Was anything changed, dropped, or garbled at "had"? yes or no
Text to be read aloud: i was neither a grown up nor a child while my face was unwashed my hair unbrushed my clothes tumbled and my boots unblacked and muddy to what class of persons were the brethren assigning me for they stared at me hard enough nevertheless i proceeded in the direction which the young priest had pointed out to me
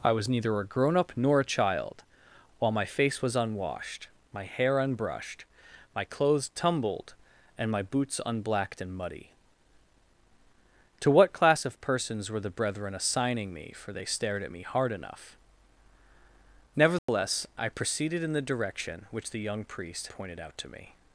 yes